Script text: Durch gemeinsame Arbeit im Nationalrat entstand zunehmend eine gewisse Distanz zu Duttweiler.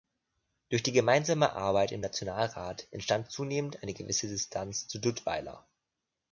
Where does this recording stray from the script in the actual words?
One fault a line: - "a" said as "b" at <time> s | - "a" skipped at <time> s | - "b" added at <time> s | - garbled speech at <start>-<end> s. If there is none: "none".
- "die" added at 0.8 s